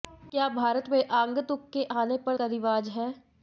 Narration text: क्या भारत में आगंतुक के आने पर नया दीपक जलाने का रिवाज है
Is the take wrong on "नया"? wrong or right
wrong